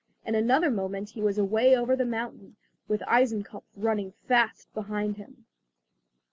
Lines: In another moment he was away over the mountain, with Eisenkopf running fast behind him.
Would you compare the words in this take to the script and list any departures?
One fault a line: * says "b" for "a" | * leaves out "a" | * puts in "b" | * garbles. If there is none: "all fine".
all fine